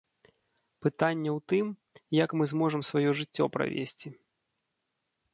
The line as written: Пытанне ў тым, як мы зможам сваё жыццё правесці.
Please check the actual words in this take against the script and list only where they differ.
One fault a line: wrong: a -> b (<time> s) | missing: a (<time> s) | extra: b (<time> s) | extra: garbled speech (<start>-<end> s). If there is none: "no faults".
no faults